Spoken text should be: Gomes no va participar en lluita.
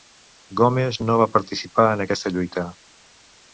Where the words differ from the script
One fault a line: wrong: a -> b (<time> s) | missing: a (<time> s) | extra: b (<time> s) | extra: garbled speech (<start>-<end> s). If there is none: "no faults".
extra: aquesta (2.0 s)